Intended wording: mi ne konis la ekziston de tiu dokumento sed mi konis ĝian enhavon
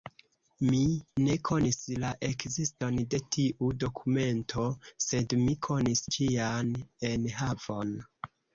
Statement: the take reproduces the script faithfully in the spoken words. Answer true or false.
true